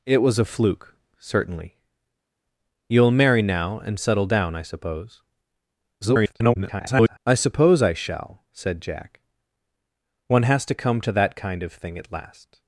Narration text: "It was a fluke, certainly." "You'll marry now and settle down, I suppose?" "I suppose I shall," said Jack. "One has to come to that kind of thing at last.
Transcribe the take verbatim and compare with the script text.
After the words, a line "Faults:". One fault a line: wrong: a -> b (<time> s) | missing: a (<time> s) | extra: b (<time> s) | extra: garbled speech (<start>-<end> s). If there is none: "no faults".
"It was a fluke, certainly." "You'll marry now and settle down, I suppose?" [garbled] "I suppose I shall," said Jack. "One has to come to that kind of thing at last.
Faults:
extra: garbled speech (6.0-7.2 s)